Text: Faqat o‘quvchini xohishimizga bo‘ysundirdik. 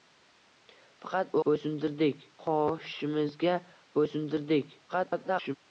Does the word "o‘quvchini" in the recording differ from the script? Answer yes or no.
yes